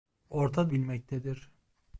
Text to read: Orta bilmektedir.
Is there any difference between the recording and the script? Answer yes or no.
no